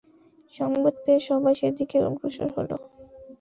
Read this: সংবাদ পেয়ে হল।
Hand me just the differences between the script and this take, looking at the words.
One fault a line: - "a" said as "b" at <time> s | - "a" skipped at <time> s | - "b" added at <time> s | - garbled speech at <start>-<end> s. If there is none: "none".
- "সবাই সেদিকে অগ্রসর" added at 1.3 s